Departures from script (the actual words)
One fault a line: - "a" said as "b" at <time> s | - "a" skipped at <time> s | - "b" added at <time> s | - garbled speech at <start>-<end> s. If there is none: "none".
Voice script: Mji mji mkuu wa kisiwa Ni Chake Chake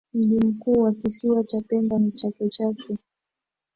- "mji" skipped at 0.4 s
- "Cha pemba" added at 1.4 s